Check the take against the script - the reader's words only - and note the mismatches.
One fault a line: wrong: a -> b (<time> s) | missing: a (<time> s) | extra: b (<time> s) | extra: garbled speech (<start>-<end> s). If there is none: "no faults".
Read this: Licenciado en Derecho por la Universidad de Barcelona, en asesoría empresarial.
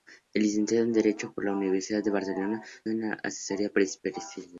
no faults